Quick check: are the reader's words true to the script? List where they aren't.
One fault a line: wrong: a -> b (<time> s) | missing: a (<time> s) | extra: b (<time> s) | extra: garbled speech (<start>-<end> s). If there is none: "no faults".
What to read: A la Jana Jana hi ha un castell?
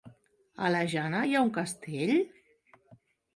missing: Jana (1.2 s)